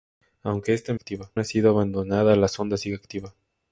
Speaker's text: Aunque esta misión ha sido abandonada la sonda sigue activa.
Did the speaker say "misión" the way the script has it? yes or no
no